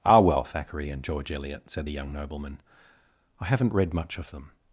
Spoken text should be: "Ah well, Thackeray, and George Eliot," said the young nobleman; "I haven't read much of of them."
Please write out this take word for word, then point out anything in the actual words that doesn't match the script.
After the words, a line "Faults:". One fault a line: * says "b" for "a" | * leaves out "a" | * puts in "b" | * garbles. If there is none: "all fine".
"Ah well, Thackeray, and George Eliot," said the young nobleman; "I haven't read much of them."
Faults:
* leaves out "of"